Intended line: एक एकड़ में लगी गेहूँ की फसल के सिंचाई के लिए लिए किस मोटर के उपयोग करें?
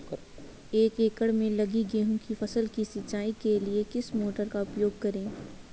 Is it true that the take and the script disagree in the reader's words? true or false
true